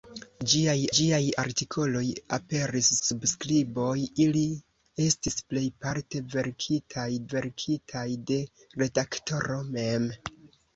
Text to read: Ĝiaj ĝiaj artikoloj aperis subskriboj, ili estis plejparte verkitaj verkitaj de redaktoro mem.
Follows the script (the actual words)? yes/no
yes